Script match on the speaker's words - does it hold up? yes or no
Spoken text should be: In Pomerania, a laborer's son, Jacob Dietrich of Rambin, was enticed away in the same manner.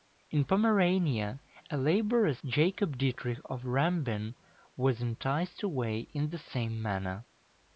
no